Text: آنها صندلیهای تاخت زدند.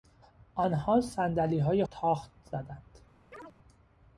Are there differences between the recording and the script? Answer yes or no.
no